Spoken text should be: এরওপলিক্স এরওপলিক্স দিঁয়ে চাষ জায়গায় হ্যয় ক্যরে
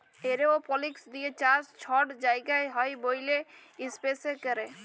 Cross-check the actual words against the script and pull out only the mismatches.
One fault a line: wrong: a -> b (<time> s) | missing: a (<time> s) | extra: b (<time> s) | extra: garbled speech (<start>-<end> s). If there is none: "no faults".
missing: এরওপলিক্স (1.0 s)
extra: ছট (1.8 s)
extra: ব্যইলে ইস্পেসে (3.0 s)